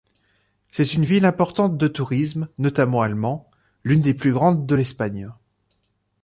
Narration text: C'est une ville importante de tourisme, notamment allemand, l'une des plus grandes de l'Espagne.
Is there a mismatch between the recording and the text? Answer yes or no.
no